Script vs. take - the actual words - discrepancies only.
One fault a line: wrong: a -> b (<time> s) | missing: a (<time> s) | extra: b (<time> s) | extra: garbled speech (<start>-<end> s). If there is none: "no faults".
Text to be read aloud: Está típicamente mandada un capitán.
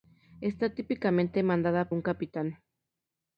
no faults